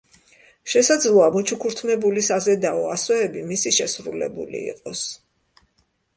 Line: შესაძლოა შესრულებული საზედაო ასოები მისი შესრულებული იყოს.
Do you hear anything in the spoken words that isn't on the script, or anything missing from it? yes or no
yes